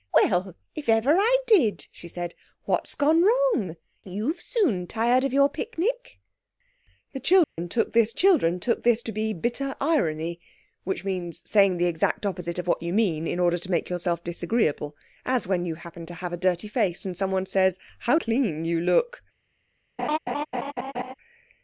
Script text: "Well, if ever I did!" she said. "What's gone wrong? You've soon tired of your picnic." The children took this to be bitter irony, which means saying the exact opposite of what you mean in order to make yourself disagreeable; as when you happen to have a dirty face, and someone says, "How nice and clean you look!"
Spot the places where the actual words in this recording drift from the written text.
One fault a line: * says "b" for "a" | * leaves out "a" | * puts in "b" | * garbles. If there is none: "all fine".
* puts in "children took this"
* leaves out "nice and"